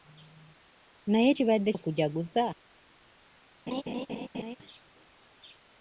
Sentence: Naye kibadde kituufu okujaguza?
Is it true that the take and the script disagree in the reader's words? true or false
true